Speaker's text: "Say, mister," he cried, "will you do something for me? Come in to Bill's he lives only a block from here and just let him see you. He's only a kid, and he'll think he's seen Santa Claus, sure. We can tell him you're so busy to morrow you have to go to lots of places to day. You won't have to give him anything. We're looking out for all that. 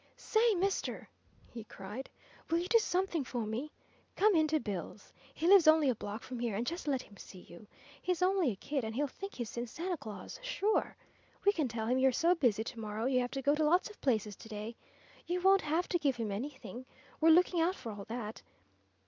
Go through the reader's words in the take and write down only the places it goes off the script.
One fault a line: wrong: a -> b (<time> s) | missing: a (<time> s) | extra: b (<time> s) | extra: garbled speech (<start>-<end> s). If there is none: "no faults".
no faults